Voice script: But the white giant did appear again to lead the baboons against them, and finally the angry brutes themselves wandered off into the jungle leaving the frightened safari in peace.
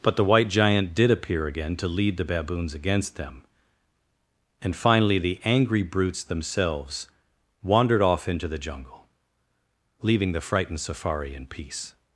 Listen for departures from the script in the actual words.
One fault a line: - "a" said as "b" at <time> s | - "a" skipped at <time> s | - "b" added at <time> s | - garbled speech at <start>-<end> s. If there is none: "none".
none